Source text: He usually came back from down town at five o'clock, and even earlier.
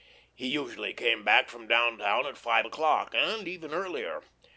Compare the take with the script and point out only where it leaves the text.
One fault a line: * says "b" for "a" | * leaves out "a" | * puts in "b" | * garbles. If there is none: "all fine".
all fine